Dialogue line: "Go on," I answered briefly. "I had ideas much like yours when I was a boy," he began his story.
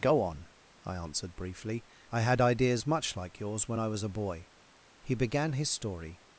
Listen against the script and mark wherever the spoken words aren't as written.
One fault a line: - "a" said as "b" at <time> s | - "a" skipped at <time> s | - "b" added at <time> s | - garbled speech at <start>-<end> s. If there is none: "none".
none